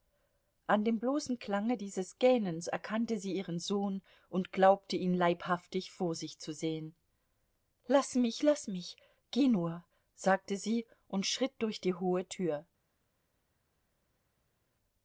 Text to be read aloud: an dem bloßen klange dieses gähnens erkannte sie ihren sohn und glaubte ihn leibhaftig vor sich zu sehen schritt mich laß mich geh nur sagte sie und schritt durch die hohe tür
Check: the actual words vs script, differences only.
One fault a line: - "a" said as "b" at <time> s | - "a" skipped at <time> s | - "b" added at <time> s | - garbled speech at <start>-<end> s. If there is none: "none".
- "schritt" said as "laß" at 7.8 s